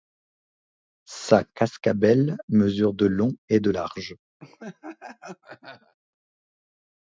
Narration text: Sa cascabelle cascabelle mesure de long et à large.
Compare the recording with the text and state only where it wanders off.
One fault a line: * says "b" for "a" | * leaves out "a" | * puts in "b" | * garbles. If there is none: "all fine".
* leaves out "cascabelle"
* says "de" for "à"